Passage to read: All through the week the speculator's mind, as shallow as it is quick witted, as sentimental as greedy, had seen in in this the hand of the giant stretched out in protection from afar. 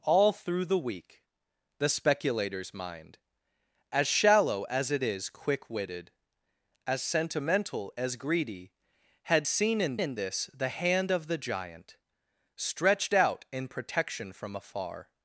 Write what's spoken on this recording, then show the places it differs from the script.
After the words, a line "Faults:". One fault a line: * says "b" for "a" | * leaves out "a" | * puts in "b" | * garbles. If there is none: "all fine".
All through the week the speculator's mind, as shallow as it is quick witted, as sentimental as greedy, had seen in in this the hand of the giant stretched out in protection from afar.
Faults:
all fine